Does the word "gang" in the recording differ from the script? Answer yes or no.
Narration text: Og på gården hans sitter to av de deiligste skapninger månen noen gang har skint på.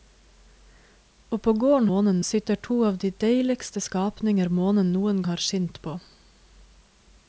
yes